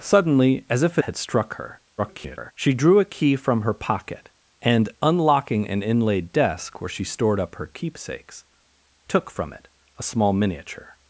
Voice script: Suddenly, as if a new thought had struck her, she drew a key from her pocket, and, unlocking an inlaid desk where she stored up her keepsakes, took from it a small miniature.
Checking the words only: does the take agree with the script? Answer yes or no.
no